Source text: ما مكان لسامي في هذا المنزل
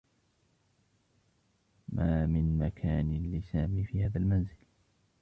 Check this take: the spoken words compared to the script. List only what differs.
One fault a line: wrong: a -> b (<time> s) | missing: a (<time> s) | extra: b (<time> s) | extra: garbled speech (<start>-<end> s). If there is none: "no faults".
extra: من (2.2 s)